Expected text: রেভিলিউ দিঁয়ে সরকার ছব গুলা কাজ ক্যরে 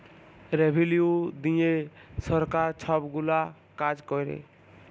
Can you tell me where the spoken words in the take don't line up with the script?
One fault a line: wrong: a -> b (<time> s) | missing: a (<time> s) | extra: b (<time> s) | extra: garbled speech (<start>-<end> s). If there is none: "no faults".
no faults